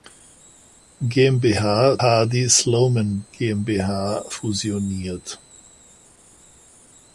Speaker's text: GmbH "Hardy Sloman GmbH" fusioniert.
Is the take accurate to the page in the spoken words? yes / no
yes